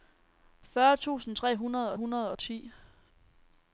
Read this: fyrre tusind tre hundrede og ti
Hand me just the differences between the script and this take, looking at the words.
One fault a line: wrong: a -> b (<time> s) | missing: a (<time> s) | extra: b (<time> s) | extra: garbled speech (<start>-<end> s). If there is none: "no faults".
extra: hundrede (1.9 s)